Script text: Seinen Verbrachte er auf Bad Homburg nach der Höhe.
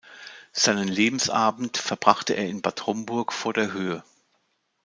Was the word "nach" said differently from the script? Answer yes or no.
yes